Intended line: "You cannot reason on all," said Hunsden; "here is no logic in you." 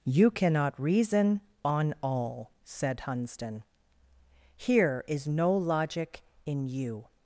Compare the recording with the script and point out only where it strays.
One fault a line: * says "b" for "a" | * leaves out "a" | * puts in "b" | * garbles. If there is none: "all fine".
all fine